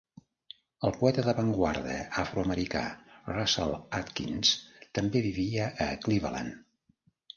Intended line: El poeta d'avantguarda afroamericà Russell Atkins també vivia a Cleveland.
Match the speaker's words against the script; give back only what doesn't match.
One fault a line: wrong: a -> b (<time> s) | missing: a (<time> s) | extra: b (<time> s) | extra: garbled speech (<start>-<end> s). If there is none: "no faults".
no faults